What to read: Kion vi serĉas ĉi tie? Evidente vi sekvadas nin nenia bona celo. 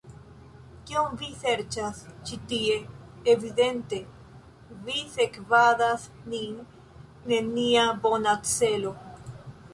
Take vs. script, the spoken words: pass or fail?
pass